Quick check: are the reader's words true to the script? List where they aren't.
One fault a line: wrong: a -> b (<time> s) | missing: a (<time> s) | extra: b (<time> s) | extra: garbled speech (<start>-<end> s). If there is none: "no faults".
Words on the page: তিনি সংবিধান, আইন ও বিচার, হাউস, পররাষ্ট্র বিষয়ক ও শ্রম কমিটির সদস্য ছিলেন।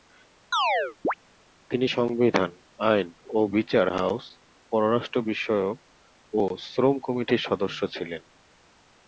no faults